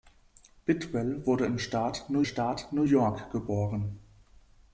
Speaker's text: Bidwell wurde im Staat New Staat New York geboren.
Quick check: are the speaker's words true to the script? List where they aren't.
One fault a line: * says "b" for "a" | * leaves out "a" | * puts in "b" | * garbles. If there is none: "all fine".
all fine